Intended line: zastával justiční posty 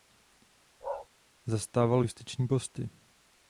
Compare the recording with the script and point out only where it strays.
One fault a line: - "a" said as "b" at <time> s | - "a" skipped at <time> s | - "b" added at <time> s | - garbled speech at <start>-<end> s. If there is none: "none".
none